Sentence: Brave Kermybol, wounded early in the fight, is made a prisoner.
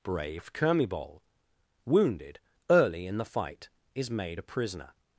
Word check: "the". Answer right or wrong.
right